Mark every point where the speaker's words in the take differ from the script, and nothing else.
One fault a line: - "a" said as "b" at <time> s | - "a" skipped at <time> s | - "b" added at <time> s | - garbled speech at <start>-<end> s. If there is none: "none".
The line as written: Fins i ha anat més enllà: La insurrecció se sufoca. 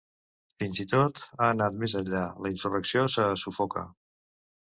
- "tot" added at 0.9 s